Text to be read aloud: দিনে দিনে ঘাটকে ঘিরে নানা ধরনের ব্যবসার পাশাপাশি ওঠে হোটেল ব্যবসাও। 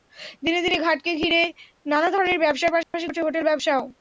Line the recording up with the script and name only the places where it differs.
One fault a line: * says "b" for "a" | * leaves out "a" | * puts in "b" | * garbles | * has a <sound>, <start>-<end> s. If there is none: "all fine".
* has a dropout, 2.8-2.9 s